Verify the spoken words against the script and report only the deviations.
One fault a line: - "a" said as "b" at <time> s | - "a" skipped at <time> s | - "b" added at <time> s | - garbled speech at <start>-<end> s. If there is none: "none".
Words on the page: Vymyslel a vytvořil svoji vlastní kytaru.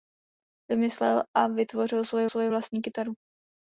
- "svoji" added at 2.3 s